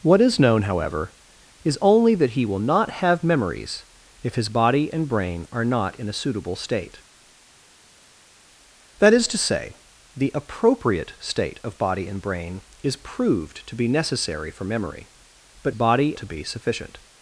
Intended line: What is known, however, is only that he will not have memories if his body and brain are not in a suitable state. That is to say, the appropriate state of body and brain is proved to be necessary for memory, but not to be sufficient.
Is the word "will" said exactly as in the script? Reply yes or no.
yes